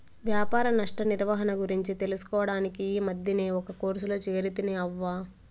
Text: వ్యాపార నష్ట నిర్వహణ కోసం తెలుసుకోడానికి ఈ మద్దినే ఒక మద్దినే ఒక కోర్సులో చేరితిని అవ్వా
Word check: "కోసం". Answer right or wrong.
wrong